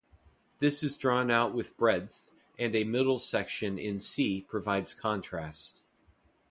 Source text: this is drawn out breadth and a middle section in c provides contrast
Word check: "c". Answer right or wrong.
right